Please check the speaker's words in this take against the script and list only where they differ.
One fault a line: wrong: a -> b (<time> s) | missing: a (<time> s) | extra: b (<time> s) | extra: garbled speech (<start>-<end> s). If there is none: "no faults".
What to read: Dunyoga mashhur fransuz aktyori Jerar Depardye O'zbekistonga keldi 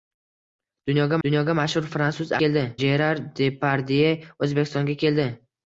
extra: dunyoga (1.3 s)
wrong: aktyori -> keldi (2.4 s)